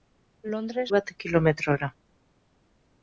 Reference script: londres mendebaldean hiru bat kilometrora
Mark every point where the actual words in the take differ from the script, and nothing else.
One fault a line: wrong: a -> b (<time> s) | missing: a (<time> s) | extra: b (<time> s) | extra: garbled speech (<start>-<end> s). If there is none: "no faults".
missing: mendebaldean hiru (0.8 s)